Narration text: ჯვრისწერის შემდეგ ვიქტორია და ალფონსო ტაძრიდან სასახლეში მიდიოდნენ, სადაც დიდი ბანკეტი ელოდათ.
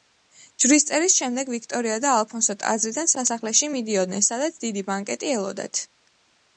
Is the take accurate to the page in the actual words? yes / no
yes